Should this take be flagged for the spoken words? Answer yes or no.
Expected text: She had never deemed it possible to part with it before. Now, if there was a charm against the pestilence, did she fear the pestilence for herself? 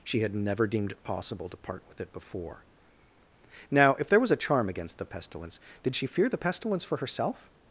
no